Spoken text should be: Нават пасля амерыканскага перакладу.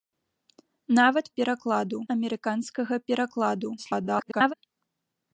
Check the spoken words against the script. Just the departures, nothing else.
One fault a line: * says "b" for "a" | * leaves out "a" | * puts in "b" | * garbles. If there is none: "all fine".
* says "перакладу" for "пасля"
* garbles